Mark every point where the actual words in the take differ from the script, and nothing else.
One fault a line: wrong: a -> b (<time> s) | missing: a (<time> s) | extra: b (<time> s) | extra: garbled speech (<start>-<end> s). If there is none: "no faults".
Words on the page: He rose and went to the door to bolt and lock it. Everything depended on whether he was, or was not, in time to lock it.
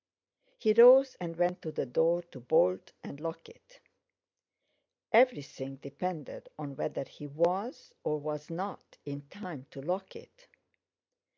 no faults